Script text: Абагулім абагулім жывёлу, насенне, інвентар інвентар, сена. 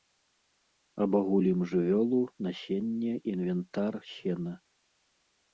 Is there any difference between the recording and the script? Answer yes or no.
yes